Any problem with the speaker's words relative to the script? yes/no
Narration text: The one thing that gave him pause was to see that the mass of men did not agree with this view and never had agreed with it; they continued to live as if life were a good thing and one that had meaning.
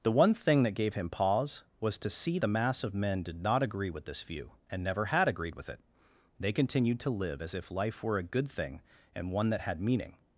yes